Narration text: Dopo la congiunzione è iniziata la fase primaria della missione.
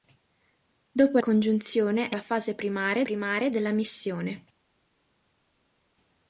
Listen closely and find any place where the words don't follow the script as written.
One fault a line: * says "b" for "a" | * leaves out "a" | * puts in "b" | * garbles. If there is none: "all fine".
* leaves out "la"
* leaves out "iniziata"
* puts in "primaria"